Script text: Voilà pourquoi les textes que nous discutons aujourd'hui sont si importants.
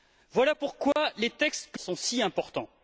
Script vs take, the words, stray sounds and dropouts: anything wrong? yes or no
yes